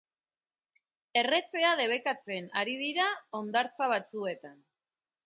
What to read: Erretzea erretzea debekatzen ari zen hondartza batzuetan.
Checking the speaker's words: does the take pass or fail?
fail